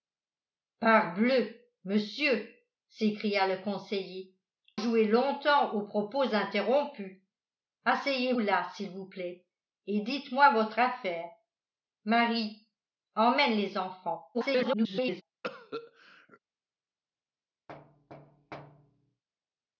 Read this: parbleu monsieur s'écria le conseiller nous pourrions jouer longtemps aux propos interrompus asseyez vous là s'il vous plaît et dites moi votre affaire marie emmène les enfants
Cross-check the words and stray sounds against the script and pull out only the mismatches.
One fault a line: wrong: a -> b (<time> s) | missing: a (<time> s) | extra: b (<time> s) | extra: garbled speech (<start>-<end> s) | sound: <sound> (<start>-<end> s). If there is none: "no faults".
missing: nous pourrions (4.3 s)
missing: vous (8.3 s)
extra: garbled speech (14.3-15.2 s)
sound: cough (15.4-16.4 s)
sound: thud (17.7-19.2 s)